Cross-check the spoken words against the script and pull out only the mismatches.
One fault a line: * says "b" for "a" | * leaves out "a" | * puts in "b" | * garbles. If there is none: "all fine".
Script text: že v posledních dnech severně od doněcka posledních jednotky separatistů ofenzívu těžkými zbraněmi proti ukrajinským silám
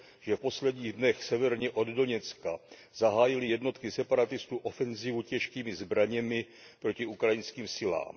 * says "zahájily" for "posledních"